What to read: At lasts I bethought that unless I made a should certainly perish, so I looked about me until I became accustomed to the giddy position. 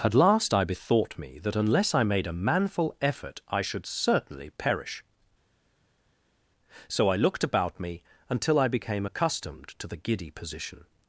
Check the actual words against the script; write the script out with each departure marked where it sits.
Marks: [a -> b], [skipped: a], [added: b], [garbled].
At [lasts -> last] I bethought [added: me] that unless I made a [added: manful effort I] should certainly perish, so I looked about me until I became accustomed to the giddy position.